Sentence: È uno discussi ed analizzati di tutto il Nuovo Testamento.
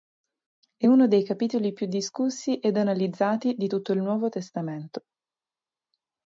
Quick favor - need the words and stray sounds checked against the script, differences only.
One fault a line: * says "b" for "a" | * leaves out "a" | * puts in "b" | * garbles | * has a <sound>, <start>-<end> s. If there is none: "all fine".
* puts in "dei capitoli più"